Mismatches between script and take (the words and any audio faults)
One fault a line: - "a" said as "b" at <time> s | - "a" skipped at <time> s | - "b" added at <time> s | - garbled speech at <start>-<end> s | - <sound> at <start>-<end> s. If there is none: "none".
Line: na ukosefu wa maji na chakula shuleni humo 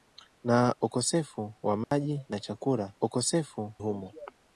- dropout at 1.8-1.9 s
- "shuleni" said as "ukosefu" at 3.0 s